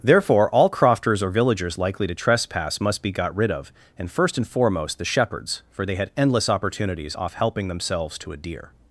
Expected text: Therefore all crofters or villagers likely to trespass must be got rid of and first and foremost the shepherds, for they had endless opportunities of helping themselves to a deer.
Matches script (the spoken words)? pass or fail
fail